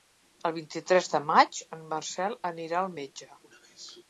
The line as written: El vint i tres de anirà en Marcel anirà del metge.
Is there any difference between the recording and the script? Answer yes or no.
yes